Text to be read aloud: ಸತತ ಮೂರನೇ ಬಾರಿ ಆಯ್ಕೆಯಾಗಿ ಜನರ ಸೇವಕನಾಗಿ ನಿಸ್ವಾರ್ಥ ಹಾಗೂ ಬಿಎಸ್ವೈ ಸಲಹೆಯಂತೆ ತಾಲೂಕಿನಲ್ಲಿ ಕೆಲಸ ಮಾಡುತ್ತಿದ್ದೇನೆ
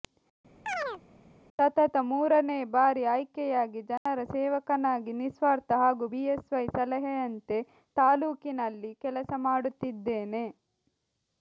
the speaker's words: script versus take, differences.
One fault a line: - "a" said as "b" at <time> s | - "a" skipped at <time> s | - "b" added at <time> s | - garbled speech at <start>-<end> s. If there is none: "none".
none